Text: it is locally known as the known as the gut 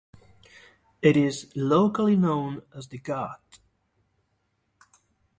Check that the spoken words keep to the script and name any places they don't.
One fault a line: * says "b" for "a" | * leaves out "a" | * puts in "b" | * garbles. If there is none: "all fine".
* leaves out "known as the"